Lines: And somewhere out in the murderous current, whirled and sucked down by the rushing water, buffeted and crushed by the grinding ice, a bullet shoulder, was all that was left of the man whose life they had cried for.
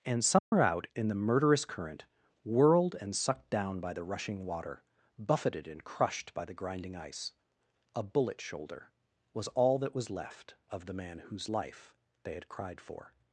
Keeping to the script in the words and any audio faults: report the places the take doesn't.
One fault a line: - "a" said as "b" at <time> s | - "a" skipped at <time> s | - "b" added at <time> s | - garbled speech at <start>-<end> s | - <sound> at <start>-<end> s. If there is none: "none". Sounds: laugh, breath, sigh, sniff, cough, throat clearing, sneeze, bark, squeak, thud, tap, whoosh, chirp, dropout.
- dropout at 0.4-0.5 s